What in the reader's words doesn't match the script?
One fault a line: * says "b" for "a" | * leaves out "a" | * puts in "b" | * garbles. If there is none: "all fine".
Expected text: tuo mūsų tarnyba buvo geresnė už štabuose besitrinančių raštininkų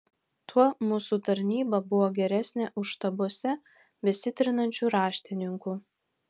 all fine